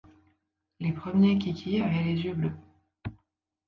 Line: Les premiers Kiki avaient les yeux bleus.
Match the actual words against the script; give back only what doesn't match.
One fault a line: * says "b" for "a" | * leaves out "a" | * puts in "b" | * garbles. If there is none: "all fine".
all fine